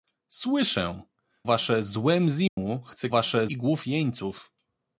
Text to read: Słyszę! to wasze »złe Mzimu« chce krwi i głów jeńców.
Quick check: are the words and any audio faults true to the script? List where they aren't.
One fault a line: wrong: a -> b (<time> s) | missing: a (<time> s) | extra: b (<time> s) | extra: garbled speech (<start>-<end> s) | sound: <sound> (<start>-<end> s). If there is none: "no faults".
missing: to (1.0 s)
sound: dropout (2.5-2.6 s)
wrong: krwi -> wasze (3.1 s)